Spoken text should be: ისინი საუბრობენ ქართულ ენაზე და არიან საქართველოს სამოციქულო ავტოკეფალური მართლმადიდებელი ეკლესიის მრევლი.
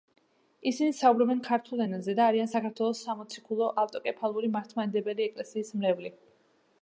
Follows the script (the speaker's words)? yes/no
yes